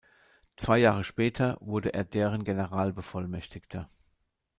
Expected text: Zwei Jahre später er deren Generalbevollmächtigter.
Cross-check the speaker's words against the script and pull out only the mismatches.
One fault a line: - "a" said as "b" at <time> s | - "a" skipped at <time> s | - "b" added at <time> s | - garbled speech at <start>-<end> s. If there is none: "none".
- "wurde" added at 1.6 s